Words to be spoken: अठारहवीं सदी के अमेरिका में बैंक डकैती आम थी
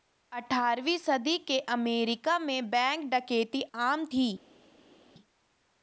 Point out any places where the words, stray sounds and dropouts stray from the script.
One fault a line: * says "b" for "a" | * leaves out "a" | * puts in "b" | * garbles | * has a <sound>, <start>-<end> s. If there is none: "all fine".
all fine